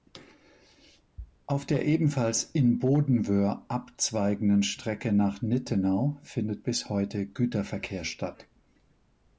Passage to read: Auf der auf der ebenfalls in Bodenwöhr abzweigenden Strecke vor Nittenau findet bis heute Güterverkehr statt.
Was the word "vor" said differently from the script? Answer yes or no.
yes